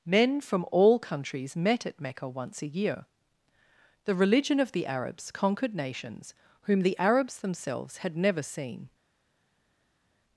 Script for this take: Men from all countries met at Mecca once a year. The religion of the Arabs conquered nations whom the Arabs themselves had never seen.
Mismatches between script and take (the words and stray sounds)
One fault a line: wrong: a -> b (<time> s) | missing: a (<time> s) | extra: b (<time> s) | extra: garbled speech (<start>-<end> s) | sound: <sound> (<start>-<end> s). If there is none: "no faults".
no faults